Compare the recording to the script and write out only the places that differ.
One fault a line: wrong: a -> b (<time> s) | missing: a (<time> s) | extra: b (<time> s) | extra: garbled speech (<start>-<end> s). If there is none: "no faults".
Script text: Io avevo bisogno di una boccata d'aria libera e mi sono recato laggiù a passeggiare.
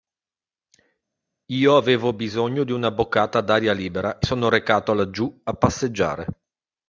missing: mi (4.3 s)